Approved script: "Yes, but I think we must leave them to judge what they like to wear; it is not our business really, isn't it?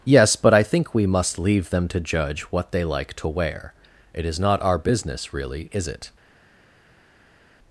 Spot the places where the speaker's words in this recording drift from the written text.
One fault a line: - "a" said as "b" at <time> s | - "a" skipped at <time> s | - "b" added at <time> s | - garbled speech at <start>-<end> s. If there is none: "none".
- "isn't" said as "is" at 5.7 s